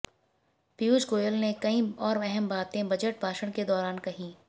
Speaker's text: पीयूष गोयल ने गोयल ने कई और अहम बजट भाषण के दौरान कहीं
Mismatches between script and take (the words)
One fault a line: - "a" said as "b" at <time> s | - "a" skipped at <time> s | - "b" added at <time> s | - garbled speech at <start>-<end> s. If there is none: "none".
- "गोयल ने" skipped at 1.5 s
- "बातें" added at 2.5 s